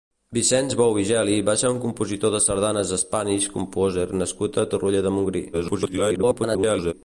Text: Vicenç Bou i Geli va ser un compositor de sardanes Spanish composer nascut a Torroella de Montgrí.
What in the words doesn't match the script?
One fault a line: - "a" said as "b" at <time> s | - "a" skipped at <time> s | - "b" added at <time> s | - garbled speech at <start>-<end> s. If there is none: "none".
- garbled speech at 5.5-6.9 s